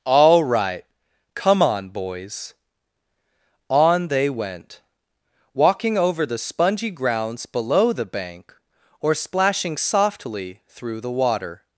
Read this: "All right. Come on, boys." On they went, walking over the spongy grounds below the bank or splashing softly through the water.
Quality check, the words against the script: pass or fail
pass